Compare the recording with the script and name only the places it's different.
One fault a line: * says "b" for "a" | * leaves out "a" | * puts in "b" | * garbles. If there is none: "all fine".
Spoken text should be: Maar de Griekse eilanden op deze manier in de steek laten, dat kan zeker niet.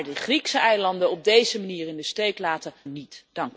* leaves out "dat kan zeker"